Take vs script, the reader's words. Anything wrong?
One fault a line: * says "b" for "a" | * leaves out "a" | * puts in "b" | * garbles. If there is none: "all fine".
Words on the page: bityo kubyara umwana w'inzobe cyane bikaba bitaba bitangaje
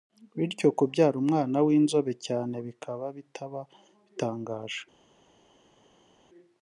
all fine